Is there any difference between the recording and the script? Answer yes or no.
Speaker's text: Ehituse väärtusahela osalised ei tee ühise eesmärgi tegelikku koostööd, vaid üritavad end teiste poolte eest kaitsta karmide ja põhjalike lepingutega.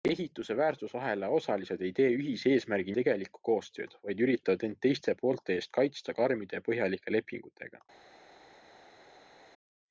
no